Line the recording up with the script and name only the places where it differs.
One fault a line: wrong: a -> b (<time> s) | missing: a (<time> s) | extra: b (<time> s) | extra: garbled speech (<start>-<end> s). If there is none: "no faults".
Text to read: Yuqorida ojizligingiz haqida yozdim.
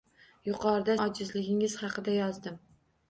no faults